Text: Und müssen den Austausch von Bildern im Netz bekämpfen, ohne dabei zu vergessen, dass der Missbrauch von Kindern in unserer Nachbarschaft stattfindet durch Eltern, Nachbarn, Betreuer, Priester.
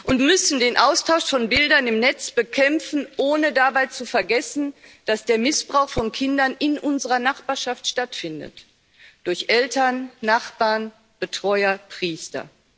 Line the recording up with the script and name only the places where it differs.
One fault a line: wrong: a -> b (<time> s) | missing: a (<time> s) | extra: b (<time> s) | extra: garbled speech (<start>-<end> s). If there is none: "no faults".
no faults